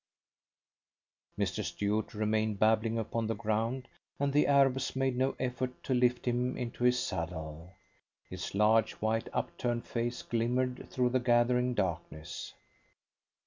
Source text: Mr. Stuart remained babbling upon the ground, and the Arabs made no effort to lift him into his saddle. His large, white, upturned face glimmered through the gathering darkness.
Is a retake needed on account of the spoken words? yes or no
no